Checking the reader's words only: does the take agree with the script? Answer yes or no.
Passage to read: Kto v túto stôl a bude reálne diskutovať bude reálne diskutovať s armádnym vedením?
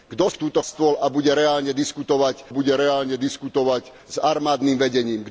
yes